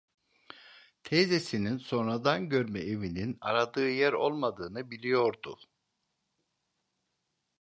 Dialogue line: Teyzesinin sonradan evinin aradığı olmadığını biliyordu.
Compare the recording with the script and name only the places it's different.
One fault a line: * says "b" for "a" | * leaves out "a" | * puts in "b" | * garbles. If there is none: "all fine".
* puts in "görme"
* puts in "yer"